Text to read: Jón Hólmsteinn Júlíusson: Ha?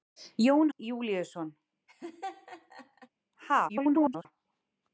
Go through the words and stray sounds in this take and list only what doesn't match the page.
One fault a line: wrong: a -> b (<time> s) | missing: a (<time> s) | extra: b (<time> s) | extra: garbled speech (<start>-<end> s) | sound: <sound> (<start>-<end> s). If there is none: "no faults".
missing: Hólmsteinn (0.7 s)
sound: laugh (1.9-3.1 s)
extra: garbled speech (3.7-4.3 s)